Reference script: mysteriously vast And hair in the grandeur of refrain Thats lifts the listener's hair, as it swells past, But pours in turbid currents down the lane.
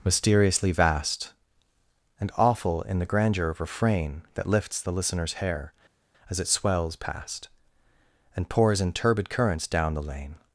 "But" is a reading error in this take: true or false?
true